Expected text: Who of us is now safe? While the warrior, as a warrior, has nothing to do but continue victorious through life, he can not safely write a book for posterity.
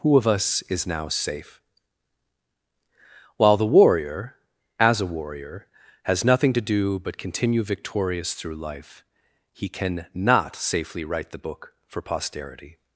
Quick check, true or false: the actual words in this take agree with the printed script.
false